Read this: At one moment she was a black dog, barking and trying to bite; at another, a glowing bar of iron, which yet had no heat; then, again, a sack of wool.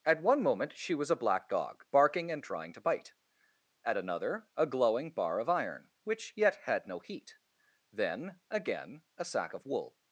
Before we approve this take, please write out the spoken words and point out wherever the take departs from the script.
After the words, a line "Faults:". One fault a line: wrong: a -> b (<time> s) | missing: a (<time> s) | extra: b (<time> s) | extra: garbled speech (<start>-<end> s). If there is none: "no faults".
At one moment she was a black dog, barking and trying to bite; at another, a glowing bar of iron, which yet had no heat; then, again, a sack of wool.
Faults:
no faults